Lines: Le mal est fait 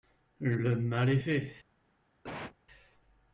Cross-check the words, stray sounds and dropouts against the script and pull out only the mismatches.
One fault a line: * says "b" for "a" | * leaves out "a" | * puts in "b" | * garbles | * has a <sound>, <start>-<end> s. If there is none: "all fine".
* has a cough, 2.2-2.6 s